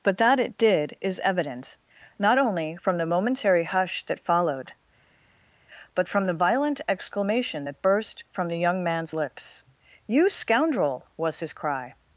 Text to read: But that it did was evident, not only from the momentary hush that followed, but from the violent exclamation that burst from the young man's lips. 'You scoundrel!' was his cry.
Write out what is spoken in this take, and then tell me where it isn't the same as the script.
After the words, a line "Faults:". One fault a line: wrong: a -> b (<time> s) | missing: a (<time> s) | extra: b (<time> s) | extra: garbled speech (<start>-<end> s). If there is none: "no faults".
But that it did is evident, not only from the momentary hush that followed, but from the violent exclamation that burst from the young man's lips. 'You scoundrel!' was his cry.
Faults:
wrong: was -> is (1.0 s)